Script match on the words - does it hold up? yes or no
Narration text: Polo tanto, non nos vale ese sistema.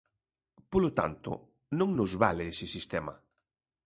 yes